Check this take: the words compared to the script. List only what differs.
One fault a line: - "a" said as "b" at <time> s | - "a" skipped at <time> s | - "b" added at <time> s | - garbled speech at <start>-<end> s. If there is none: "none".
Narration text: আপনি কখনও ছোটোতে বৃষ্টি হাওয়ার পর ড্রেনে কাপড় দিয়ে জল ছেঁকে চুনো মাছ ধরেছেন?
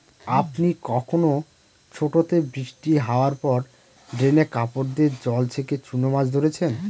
none